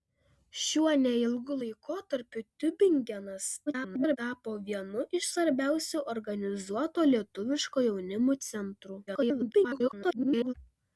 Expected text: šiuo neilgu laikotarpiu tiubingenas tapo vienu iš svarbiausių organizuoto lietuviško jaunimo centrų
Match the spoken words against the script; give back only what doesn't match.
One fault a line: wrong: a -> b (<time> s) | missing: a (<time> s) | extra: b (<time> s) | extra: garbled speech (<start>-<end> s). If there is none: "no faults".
extra: garbled speech (3.7-4.2 s)
extra: garbled speech (9.1-10.5 s)